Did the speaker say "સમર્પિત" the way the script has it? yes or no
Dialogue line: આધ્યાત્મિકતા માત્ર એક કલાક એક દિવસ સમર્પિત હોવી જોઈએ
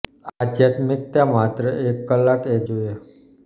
no